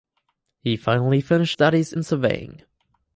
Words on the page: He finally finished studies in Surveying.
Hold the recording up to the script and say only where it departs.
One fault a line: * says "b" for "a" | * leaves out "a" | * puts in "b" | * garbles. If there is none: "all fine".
all fine